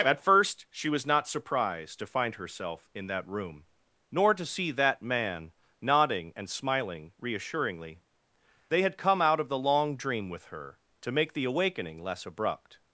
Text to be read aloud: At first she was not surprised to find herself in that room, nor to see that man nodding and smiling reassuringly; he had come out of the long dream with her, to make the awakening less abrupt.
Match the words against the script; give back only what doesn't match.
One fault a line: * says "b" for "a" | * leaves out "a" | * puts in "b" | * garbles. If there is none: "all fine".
* says "they" for "he"